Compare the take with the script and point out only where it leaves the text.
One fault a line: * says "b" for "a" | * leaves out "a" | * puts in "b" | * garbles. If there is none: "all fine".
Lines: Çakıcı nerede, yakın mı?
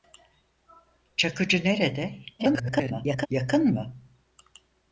* garbles